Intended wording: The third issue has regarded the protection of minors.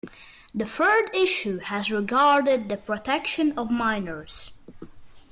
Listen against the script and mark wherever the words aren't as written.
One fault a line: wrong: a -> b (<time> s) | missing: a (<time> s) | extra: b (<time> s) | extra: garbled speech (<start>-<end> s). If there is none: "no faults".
no faults